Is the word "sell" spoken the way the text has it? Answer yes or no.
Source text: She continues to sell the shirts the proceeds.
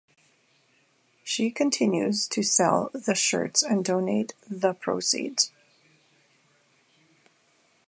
yes